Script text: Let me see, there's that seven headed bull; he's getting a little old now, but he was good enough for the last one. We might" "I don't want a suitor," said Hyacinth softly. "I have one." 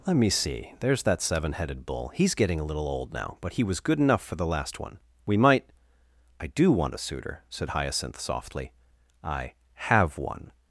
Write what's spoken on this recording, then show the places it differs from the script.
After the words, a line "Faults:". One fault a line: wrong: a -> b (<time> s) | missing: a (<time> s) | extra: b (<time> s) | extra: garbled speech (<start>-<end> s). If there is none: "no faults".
Let me see, there's that seven headed bull; he's getting a little old now, but he was good enough for the last one. We might" "I do want a suitor," said Hyacinth softly. "I have one."
Faults:
wrong: don't -> do (6.5 s)